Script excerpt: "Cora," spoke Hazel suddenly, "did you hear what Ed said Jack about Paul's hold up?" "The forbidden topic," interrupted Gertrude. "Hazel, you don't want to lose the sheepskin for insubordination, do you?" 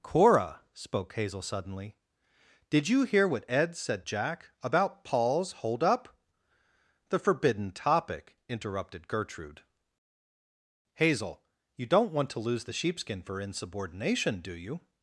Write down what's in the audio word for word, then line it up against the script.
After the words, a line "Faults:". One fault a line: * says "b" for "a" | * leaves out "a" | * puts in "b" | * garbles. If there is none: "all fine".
"Cora," spoke Hazel suddenly, "did you hear what Ed said Jack about Paul's hold up?" "The forbidden topic," interrupted Gertrude. "Hazel, you don't want to lose the sheepskin for insubordination, do you?"
Faults:
all fine